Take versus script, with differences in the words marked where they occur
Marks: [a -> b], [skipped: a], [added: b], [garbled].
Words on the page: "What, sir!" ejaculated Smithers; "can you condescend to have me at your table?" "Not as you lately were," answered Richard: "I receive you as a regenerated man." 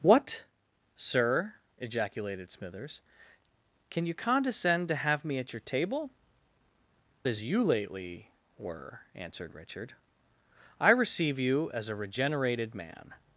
"What, sir!" ejaculated Smithers; "can you condescend to have me at your table?" [skipped: "Not] as you lately were," answered Richard: "I receive you as a regenerated man."